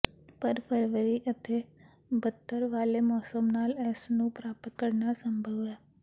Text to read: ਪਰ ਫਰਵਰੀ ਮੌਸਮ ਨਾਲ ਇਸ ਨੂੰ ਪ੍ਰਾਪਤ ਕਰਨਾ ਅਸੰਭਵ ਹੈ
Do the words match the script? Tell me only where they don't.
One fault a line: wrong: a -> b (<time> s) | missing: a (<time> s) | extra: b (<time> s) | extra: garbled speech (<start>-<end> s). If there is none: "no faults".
extra: ਅਤੇ ਬੱਦਤਰ ਵਾਲੇ (1.3 s)